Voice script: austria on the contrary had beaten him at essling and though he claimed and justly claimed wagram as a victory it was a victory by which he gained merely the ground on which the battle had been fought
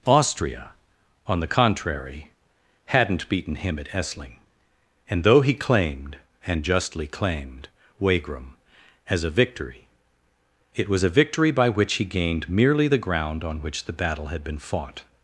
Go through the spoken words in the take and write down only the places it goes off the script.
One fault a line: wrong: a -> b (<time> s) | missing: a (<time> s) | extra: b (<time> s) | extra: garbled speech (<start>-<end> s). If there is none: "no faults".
wrong: had -> hadn't (2.9 s)